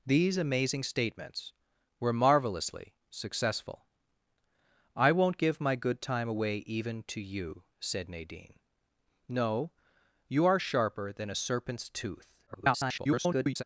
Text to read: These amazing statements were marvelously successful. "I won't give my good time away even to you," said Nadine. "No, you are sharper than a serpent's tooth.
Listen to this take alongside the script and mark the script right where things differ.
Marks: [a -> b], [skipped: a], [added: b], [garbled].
These amazing statements were marvelously successful. "I won't give my good time away even to you," said Nadine. "No, you are sharper than a serpent's tooth. [garbled]